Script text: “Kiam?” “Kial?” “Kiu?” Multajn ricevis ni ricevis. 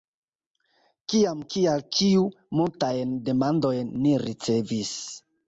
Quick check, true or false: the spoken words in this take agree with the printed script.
false